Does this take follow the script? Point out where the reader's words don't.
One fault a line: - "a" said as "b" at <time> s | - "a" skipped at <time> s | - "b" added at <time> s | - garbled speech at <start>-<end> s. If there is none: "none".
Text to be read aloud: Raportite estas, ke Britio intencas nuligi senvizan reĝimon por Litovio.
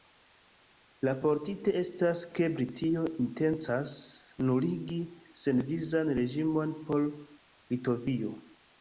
none